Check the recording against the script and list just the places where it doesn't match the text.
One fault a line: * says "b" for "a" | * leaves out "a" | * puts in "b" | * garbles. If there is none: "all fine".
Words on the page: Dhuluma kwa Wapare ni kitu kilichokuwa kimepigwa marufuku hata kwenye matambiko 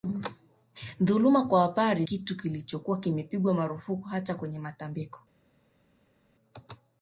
* leaves out "ni"